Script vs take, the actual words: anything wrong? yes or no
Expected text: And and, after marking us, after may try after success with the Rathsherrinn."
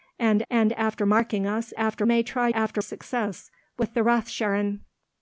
no